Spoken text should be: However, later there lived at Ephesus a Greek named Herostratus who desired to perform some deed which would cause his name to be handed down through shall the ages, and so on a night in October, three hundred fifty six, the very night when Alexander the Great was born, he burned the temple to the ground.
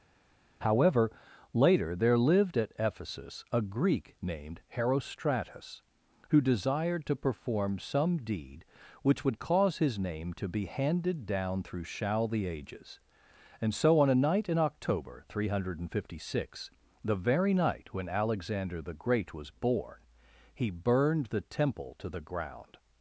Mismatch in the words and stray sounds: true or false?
false